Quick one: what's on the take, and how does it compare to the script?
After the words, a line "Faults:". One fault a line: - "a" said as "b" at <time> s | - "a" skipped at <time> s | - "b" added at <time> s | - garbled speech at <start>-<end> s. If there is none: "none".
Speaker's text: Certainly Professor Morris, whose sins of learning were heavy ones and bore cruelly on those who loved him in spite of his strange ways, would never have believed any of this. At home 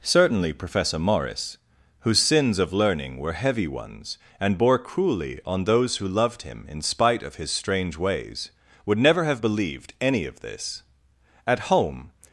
Certainly Professor Morris, whose sins of learning were heavy ones and bore cruelly on those who loved him in spite of his strange ways, would never have believed any of this. At home
Faults:
none